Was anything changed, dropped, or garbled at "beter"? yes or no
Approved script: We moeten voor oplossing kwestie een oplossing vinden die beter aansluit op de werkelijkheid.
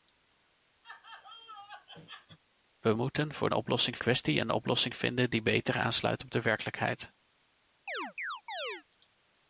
no